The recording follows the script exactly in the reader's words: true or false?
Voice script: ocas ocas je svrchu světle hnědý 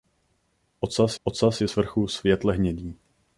true